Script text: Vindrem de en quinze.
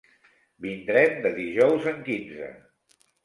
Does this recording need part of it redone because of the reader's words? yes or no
yes